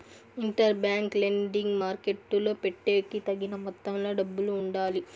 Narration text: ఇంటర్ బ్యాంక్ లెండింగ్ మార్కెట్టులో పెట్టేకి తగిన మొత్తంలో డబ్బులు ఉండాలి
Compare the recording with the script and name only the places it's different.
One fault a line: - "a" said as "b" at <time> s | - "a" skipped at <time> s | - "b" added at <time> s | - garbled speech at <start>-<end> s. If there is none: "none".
none